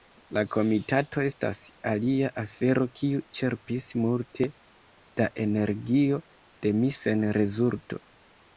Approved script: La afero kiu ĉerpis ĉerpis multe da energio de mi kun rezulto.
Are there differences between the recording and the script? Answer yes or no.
yes